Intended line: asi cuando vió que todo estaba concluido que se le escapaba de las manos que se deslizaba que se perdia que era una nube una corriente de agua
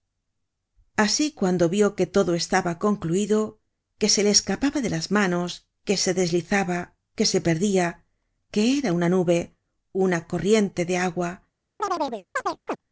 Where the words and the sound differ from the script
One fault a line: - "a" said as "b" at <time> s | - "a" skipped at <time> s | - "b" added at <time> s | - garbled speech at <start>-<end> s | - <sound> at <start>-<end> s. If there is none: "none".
- chirp at 11.8-12.8 s